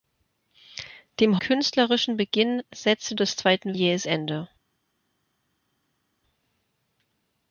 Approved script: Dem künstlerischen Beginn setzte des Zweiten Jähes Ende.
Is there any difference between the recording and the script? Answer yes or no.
no